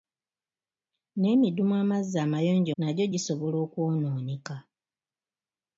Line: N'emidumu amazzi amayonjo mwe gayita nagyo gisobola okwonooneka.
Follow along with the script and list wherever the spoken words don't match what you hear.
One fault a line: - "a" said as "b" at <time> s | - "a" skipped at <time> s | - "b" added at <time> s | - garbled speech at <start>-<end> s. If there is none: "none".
- "mwe gayita" skipped at 2.7 s